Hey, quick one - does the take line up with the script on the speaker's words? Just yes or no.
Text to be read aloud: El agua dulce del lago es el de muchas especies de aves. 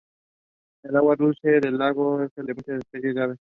yes